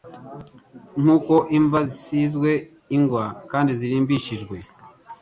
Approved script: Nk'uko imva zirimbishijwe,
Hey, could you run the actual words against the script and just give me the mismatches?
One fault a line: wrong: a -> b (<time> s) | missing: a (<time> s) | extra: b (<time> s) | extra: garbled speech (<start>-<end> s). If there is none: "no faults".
extra: zisizwe ingwa kandi (1.9 s)